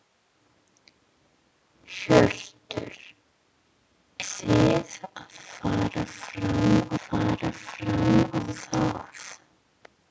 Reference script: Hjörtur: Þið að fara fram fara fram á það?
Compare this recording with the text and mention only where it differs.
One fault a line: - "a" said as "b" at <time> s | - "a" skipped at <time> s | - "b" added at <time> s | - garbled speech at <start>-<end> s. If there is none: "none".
none